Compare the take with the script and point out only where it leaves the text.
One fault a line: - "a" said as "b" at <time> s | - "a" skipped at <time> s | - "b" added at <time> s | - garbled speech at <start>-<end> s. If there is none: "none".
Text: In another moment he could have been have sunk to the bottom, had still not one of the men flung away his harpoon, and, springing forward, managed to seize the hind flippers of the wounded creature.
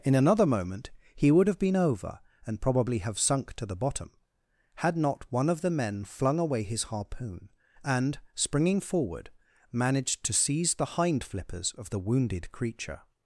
- "could" said as "would" at 1.3 s
- "over and probably" added at 1.8 s
- "still" skipped at 5.0 s